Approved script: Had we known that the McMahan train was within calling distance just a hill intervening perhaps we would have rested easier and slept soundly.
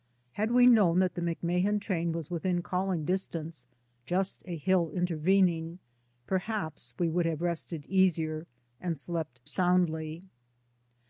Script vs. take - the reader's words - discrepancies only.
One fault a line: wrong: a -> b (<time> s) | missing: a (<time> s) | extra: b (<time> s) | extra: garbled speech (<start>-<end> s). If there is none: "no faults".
no faults